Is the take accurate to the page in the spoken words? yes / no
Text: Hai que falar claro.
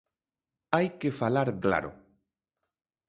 yes